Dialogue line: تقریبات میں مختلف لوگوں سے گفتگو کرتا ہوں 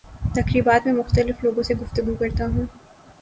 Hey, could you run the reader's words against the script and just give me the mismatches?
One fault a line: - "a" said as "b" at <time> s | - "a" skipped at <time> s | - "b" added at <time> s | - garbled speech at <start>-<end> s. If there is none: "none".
none